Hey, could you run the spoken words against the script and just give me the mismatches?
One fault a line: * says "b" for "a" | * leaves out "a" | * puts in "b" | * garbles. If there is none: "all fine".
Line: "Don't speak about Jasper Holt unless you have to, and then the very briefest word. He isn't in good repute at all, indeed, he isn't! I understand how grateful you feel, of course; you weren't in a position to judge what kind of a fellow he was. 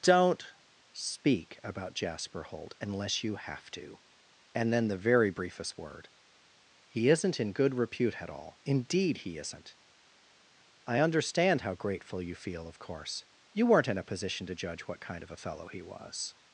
all fine